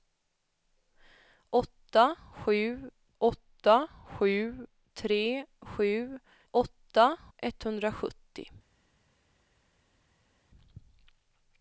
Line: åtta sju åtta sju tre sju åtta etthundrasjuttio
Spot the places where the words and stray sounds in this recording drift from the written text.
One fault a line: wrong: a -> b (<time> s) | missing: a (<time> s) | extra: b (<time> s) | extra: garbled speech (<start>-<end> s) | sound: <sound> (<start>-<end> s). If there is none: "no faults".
no faults